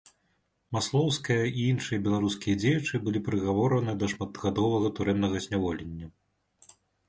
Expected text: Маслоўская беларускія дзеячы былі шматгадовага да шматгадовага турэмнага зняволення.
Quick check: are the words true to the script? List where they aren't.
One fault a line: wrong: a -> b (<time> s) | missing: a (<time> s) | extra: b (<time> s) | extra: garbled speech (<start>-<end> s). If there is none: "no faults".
extra: і іншыя (1.5 s)
wrong: шматгадовага -> прыгавораны (3.3 s)